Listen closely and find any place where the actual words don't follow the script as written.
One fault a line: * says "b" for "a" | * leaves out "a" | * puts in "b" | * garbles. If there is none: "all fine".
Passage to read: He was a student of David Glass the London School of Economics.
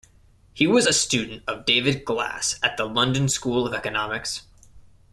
* puts in "at"